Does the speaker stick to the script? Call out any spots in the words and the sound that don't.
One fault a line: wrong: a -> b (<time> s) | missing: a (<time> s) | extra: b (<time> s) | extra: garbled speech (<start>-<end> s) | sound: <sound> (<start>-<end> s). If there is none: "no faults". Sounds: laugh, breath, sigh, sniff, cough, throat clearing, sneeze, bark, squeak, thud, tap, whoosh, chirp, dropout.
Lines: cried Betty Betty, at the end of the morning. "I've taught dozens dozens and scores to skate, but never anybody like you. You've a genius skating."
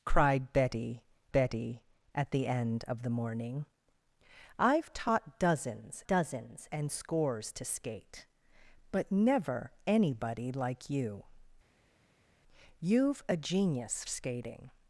no faults